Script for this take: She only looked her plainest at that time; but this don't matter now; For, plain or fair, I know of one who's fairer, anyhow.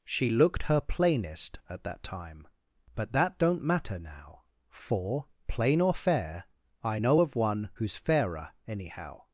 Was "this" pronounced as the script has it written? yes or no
no